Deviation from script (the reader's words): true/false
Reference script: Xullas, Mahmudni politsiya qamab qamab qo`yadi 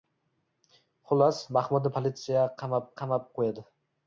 false